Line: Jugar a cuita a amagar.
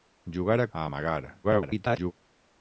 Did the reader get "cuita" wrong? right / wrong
wrong